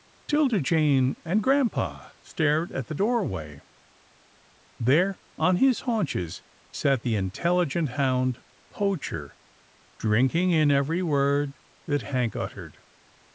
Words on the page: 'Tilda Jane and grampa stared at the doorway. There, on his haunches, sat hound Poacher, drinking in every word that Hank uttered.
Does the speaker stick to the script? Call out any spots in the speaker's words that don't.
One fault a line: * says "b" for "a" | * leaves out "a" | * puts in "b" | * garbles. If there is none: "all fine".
* puts in "the intelligent"